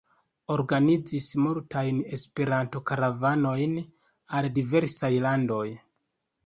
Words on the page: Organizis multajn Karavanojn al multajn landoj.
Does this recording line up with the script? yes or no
no